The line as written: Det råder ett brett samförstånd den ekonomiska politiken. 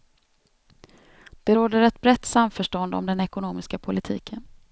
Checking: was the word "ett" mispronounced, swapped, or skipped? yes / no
no